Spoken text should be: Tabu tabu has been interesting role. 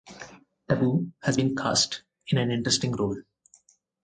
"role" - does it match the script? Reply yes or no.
yes